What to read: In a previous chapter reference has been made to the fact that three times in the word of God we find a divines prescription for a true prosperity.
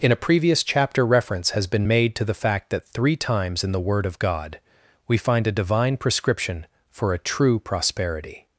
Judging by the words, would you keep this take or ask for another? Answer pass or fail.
fail